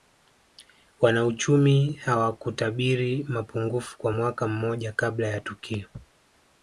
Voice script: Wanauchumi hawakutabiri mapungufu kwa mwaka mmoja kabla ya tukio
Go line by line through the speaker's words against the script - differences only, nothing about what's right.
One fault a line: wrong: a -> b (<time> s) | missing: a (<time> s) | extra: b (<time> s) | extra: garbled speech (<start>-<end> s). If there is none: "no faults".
no faults